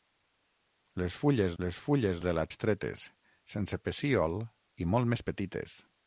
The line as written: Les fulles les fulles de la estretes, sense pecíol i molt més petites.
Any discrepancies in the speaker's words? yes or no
no